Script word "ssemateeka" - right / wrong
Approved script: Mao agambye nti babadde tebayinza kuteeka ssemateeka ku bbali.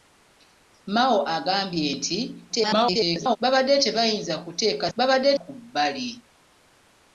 wrong